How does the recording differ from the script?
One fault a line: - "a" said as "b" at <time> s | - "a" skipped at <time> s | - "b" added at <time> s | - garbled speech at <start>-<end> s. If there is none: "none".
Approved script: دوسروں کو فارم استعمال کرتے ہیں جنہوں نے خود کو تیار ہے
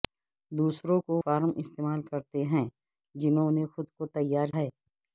none